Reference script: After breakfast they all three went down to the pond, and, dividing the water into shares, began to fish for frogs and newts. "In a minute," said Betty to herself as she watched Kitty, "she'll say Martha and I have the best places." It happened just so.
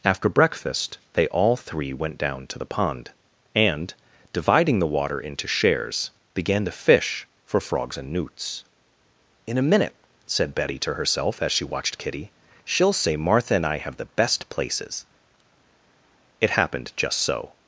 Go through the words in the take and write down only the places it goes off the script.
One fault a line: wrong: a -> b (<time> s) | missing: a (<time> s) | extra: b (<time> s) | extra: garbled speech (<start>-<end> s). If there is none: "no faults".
no faults